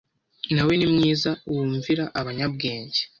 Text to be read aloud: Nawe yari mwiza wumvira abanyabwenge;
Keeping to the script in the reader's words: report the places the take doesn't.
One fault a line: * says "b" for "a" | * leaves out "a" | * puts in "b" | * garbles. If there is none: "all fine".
* says "ni" for "yari"